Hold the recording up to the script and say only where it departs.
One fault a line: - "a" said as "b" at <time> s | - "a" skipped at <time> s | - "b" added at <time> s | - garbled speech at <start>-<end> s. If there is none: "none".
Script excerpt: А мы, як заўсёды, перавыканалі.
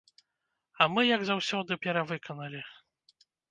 none